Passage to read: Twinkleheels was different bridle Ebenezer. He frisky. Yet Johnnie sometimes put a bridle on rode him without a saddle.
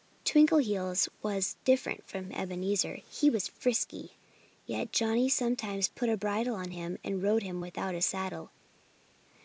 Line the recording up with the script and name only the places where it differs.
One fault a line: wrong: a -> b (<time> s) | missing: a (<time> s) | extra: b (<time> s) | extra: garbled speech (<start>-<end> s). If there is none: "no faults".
wrong: bridle -> from (2.1 s)
extra: was (3.3 s)
extra: him and (6.7 s)